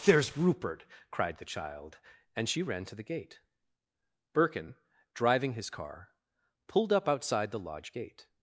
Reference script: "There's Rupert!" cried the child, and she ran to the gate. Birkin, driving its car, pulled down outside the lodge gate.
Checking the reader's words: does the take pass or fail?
fail